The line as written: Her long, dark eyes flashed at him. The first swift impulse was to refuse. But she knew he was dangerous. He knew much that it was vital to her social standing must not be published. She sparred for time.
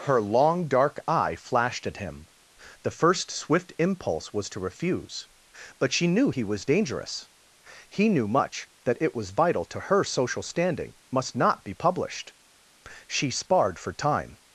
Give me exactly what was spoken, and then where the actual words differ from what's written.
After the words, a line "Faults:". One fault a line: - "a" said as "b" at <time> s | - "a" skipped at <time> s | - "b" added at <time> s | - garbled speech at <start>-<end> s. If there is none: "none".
Her long, dark eye flashed at him. The first swift impulse was to refuse. But she knew he was dangerous. He knew much that it was vital to her social standing must not be published. She sparred for time.
Faults:
- "eyes" said as "eye" at 1.1 s